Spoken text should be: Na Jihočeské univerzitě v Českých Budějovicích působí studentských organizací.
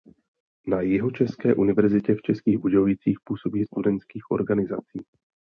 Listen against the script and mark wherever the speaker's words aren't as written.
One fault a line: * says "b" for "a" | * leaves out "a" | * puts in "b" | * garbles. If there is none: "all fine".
all fine